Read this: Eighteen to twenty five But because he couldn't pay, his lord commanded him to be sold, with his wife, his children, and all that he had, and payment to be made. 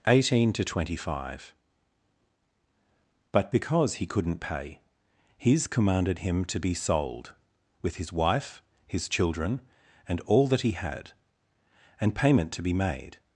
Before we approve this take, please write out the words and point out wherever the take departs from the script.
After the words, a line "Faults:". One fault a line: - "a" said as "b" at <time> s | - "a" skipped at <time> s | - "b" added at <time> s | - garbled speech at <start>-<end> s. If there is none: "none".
Eighteen to twenty five But because he couldn't pay, his commanded him to be sold, with his wife, his children, and all that he had, and payment to be made.
Faults:
- "lord" skipped at 5.7 s